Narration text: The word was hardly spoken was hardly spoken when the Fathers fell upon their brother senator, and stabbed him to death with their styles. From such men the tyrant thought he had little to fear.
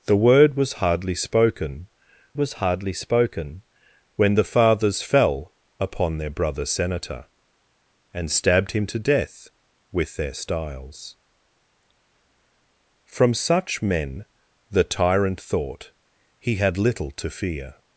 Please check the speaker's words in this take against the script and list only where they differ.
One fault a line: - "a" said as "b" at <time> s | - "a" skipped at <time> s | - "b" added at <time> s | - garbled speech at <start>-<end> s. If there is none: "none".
none